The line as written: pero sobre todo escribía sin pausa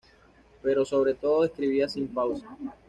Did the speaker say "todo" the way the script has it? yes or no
yes